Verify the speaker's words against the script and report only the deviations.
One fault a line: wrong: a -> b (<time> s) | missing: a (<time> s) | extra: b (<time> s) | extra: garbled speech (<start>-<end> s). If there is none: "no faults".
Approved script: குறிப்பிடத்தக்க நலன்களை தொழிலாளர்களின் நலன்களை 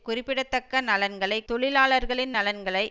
no faults